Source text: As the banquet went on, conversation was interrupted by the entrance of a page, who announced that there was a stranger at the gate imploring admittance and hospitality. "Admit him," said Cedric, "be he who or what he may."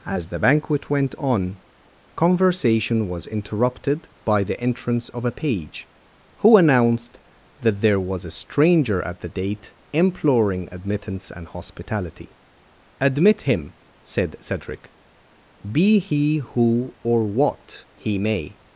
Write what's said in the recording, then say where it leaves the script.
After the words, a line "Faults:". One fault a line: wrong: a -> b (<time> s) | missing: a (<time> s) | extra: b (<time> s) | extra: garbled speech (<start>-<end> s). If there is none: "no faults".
As the banquet went on, conversation was interrupted by the entrance of a page, who announced that there was a stranger at the date imploring admittance and hospitality. "Admit him," said Cedric, "be he who or what he may."
Faults:
wrong: gate -> date (9.3 s)